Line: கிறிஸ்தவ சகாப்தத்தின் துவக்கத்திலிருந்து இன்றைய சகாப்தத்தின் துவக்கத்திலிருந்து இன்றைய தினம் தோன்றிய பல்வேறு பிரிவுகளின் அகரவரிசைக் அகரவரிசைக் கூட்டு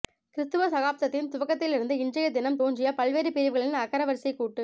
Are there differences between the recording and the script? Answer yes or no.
yes